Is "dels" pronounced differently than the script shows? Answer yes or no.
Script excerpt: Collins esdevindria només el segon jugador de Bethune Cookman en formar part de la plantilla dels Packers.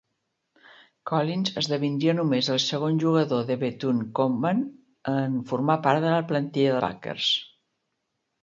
yes